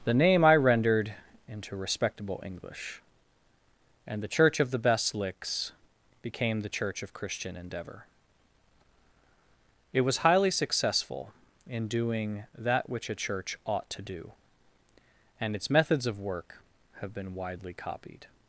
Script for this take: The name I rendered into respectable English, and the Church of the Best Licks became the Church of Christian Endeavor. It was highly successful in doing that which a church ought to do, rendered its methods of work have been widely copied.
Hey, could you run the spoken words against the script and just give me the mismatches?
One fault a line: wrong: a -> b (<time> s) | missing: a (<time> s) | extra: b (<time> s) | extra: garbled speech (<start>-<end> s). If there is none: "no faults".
wrong: rendered -> and (15.4 s)